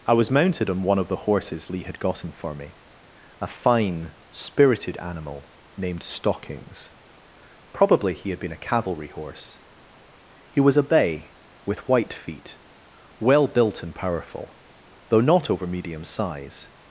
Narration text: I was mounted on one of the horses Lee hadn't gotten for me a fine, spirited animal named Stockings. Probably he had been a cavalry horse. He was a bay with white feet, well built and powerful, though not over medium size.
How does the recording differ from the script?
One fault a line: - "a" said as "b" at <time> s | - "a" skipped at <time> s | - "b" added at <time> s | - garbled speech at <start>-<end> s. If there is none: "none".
- "hadn't" said as "had" at 1.8 s